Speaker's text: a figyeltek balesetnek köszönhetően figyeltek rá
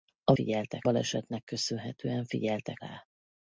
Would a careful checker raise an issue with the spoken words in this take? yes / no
no